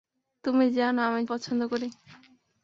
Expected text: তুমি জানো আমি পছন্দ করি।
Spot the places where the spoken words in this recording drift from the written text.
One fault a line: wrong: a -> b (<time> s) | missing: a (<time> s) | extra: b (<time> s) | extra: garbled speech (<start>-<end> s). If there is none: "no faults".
no faults